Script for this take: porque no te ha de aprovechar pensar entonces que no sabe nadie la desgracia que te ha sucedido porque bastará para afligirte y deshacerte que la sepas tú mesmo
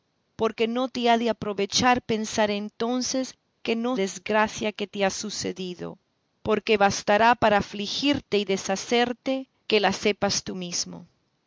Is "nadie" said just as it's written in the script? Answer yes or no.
no